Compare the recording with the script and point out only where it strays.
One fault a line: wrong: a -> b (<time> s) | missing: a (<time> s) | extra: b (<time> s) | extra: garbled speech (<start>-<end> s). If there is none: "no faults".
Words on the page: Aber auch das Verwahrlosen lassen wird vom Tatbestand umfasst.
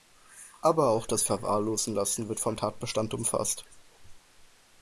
no faults